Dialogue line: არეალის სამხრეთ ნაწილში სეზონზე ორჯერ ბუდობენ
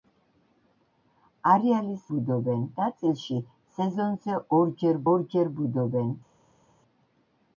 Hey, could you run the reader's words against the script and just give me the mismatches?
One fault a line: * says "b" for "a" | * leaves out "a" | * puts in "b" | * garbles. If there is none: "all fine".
* says "ბუდობენ" for "სამხრეთ"
* puts in "ორჯერ"